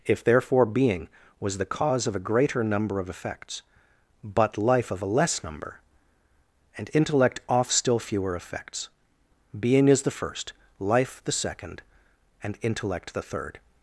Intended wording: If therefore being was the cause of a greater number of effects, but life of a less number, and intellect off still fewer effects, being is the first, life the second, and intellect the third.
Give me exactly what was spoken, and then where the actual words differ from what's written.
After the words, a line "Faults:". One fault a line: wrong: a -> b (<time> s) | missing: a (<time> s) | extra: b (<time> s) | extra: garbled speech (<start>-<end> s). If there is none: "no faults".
If therefore being was the cause of a greater number of effects, but life of a less number, and intellect off still fewer effects, being is the first, life the second, and intellect the third.
Faults:
no faults